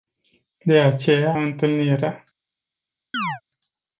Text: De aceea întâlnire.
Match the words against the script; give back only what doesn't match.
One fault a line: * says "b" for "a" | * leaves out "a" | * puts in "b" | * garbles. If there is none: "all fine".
all fine